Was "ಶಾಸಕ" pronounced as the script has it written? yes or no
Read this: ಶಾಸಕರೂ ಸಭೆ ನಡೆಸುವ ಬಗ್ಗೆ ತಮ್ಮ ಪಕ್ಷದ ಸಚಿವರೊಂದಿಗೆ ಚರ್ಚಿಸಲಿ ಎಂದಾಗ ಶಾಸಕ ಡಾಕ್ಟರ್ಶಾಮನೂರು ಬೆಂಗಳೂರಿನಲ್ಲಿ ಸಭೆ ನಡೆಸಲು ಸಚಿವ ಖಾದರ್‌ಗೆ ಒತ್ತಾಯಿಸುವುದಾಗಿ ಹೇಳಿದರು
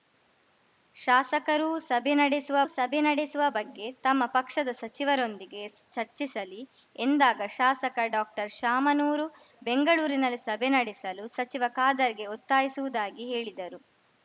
yes